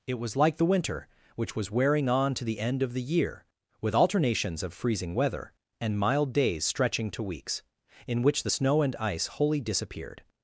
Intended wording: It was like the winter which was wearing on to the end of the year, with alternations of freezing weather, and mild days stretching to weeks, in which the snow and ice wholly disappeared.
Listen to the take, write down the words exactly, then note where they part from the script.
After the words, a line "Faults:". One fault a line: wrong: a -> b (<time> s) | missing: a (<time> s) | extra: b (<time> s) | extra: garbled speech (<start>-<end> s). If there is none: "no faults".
It was like the winter which was wearing on to the end of the year, with alternations of freezing weather, and mild days stretching to weeks, in which the snow and ice wholly disappeared.
Faults:
no faults